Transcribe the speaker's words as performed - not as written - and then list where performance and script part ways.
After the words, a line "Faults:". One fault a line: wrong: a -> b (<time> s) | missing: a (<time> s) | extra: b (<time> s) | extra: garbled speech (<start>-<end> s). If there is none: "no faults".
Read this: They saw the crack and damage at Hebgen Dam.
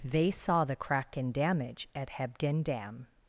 They saw the crack and damage at Hebgen Dam.
Faults:
no faults